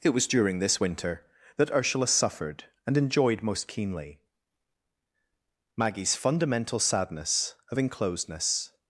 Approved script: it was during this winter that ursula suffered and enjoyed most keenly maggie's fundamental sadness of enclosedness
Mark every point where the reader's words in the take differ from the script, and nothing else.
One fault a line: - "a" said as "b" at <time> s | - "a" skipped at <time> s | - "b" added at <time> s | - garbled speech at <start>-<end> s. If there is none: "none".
none